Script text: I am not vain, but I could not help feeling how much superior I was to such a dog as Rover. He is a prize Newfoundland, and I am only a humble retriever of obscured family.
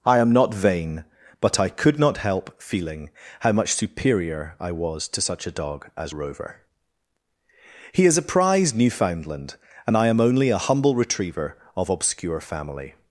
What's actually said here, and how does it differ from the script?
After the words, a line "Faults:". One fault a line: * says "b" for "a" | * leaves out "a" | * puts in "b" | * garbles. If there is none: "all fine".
I am not vain, but I could not help feeling how much superior I was to such a dog as Rover. He is a prize Newfoundland, and I am only a humble retriever of obscure family.
Faults:
* says "obscure" for "obscured"